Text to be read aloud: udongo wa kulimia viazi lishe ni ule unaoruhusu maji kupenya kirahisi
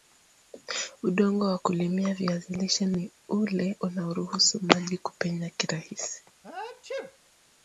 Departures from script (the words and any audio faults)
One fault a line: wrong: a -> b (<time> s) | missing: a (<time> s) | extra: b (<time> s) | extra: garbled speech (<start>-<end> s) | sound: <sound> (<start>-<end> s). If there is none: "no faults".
sound: sneeze (6.4-7.2 s)